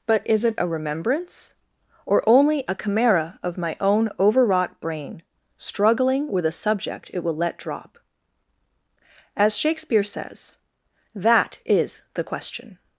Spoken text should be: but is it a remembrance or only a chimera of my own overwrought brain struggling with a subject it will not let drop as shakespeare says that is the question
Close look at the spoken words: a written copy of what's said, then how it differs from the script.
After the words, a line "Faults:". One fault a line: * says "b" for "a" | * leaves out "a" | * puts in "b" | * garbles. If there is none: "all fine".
but is it a remembrance or only a chimera of my own overwrought brain struggling with a subject it will let drop as shakespeare says that is the question
Faults:
* leaves out "not"